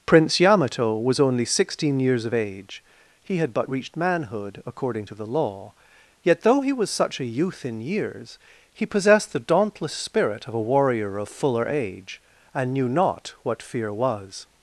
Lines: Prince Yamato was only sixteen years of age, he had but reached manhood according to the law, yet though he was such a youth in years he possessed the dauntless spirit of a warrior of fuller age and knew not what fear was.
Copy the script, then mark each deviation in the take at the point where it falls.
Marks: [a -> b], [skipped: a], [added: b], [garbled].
Prince Yamato was only sixteen years of age, he had but reached manhood according to the law, yet though he was such a youth in years he possessed the dauntless spirit of a warrior of fuller age and knew not what fear was.